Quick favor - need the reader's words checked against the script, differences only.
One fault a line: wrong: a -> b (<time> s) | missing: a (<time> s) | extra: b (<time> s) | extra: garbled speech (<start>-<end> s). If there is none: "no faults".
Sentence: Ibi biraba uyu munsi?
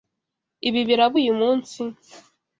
no faults